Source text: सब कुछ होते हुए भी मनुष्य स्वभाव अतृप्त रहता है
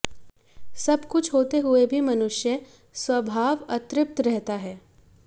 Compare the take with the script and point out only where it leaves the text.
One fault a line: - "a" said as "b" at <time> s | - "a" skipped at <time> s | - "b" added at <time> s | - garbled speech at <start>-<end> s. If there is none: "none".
none